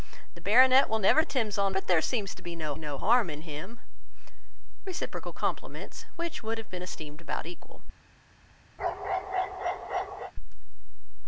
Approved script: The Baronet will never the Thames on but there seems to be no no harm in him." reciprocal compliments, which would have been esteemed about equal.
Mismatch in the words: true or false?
false